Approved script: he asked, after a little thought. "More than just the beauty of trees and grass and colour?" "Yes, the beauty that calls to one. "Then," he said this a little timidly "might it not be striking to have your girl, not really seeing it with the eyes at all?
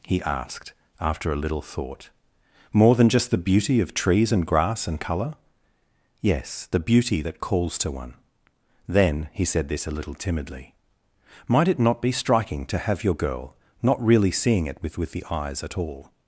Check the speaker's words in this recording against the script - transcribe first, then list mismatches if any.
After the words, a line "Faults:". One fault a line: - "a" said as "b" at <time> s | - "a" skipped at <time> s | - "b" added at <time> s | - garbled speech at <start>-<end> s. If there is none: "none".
he asked, after a little thought. "More than just the beauty of trees and grass and colour?" "Yes, the beauty that calls to one. "Then," he said this a little timidly "might it not be striking to have your girl, not really seeing it with with the eyes at all?
Faults:
- "with" added at 15.0 s